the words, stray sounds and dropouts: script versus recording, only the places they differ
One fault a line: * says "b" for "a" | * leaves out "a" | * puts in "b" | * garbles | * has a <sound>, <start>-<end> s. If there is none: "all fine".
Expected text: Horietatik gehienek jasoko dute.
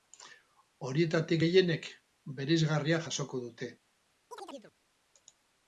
* puts in "bereizgarria"
* has a chirp, 4.3-4.7 s